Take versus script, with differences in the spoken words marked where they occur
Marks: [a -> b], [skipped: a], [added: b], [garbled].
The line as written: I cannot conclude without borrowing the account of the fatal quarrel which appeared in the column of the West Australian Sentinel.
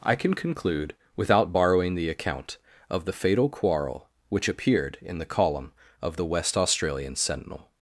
I [cannot -> can] conclude without borrowing the account of the fatal quarrel which appeared in the column of the West Australian Sentinel.